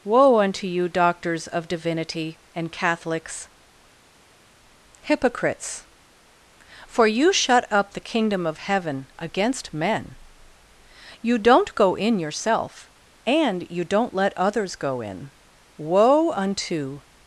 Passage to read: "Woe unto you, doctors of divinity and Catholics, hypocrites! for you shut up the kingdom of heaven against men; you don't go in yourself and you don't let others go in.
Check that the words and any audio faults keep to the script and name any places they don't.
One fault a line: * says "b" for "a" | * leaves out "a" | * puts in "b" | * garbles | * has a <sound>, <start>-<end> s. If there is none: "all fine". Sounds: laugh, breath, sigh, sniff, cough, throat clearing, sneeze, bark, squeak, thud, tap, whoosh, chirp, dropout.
* puts in "Woe unto"